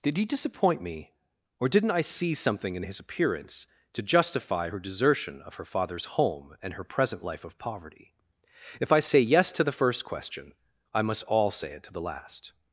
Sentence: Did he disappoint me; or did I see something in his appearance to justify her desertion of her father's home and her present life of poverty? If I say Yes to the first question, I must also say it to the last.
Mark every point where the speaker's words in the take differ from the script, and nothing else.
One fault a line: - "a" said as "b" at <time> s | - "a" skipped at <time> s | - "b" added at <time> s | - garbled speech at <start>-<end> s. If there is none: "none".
- "did" said as "didn't" at 1.7 s
- "also" said as "all" at 11.2 s